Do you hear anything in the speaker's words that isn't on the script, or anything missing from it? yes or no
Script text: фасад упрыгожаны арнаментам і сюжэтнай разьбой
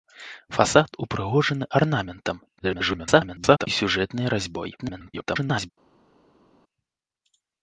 yes